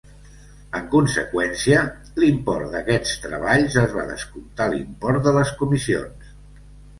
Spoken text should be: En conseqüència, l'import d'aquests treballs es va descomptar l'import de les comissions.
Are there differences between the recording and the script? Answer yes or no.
no